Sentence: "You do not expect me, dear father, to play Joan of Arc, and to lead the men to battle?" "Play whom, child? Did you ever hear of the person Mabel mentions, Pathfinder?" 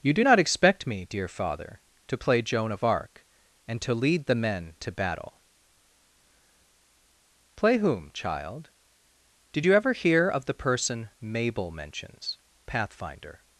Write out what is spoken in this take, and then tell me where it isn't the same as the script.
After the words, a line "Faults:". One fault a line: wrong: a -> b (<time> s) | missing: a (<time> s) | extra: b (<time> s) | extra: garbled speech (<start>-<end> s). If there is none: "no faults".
"You do not expect me, dear father, to play Joan of Arc, and to lead the men to battle?" "Play whom, child? Did you ever hear of the person Mabel mentions, Pathfinder?"
Faults:
no faults